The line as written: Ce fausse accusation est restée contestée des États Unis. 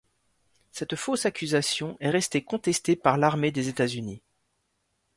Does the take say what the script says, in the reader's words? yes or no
no